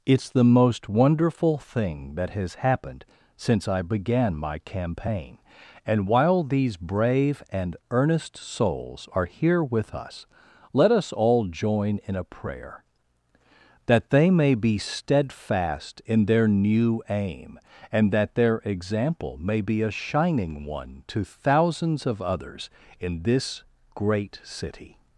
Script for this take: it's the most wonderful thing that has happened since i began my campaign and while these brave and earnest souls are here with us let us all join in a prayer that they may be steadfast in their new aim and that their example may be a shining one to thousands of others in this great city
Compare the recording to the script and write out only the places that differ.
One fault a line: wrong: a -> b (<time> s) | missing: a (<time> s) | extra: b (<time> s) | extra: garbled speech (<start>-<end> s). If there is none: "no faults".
no faults